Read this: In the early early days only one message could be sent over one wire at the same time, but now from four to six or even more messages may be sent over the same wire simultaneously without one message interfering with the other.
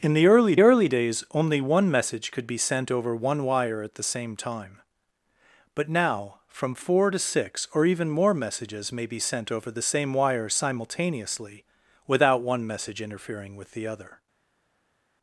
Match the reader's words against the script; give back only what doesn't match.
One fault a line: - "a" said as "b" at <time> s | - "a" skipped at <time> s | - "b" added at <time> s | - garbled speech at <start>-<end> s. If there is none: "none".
none